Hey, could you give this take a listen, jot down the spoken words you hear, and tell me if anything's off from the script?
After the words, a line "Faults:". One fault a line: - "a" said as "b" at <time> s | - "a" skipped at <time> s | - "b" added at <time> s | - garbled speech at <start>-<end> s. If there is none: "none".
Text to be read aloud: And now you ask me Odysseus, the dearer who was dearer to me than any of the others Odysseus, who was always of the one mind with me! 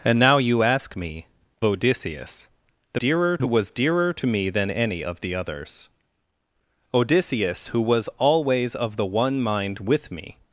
And now you ask me Odysseus, the dearer who was dearer to me than any of the others Odysseus, who was always of the one mind with me!
Faults:
none